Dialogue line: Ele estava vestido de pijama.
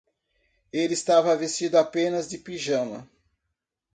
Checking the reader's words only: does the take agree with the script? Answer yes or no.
no